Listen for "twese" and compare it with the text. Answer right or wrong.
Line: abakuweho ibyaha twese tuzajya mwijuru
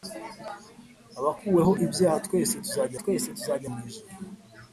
right